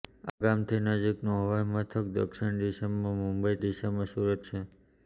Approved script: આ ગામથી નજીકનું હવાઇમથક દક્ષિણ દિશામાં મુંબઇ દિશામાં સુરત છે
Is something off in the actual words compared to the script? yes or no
no